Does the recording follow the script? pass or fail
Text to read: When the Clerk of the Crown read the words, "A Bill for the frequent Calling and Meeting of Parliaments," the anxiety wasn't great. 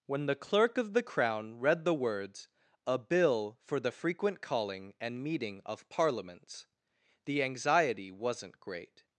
pass